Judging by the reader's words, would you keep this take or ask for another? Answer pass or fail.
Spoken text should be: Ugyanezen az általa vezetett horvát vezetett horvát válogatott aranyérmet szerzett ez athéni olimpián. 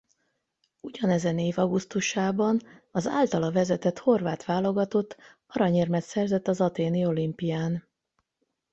fail